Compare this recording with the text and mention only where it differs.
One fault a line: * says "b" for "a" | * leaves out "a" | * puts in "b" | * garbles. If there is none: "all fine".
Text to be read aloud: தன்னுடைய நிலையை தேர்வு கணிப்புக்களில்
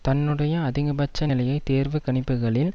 * puts in "அதிகபட்ச"